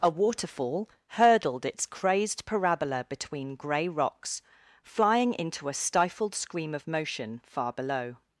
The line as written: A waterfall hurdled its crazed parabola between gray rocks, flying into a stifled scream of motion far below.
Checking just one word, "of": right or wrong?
right